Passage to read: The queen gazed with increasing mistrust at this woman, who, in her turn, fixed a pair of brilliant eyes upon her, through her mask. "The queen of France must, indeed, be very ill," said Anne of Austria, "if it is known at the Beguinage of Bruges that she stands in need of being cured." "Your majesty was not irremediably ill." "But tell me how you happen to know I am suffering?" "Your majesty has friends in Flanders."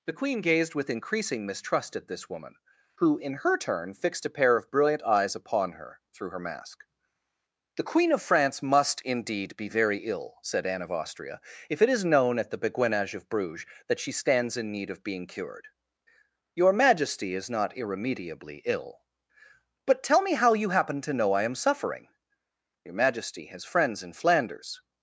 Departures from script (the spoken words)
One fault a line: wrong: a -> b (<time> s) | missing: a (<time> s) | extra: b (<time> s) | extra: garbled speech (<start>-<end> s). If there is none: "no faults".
wrong: was -> is (17.3 s)